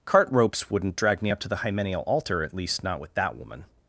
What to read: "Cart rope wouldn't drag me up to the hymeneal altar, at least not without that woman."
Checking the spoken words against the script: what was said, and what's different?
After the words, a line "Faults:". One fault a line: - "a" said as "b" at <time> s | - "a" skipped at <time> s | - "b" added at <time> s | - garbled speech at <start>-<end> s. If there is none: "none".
"Cart ropes wouldn't drag me up to the hymeneal altar, at least not with that woman."
Faults:
- "rope" said as "ropes" at 0.3 s
- "without" said as "with" at 3.0 s